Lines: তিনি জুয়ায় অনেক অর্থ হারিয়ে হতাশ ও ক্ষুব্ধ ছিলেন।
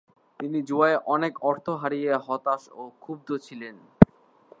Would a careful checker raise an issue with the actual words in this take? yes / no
no